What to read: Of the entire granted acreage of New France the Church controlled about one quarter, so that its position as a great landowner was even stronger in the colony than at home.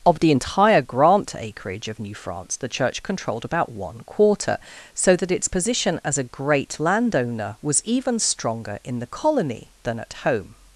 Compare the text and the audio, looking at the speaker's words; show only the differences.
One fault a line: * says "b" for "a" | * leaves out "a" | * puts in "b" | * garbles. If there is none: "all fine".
* says "grant" for "granted"